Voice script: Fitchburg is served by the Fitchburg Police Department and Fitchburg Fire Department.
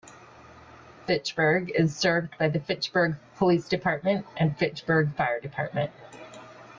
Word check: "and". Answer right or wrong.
right